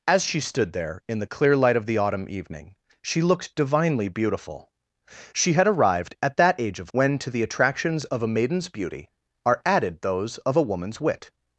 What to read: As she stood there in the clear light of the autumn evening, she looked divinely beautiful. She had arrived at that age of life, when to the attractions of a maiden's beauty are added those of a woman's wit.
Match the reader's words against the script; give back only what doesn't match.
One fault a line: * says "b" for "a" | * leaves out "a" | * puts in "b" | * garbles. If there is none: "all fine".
* leaves out "life"